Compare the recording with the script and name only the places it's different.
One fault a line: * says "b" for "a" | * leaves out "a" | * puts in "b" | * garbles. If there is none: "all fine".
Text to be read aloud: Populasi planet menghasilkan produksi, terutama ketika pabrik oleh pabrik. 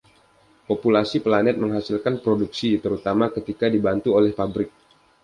* says "dibantu" for "pabrik"